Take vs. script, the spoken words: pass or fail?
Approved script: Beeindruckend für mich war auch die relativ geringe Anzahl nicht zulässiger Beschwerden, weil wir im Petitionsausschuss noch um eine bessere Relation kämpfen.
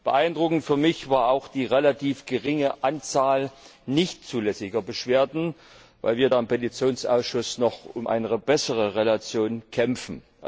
pass